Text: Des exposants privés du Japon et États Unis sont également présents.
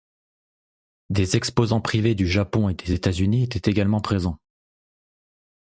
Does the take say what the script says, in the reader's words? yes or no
no